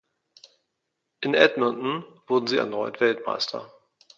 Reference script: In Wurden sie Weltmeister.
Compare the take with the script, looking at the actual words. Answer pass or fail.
fail